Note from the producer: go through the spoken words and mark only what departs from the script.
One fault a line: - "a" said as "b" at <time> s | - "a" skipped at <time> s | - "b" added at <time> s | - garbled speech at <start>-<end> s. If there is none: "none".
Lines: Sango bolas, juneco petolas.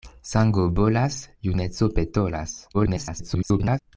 - garbled speech at 2.7-3.8 s